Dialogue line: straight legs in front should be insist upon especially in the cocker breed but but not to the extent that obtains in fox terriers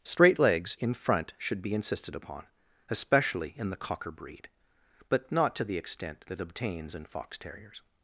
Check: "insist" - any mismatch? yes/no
yes